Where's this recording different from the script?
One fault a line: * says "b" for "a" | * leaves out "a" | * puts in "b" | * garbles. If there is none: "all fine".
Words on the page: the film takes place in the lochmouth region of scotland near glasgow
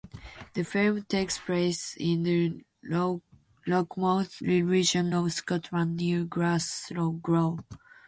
all fine